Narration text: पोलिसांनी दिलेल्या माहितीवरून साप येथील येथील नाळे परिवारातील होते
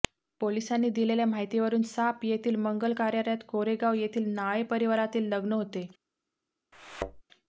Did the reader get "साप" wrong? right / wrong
right